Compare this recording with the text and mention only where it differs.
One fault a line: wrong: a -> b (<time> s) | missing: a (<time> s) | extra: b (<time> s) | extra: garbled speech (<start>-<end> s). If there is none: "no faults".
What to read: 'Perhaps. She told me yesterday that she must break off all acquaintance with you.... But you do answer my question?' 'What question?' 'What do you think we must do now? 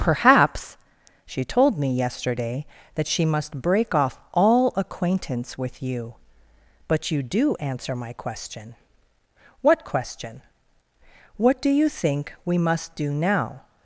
no faults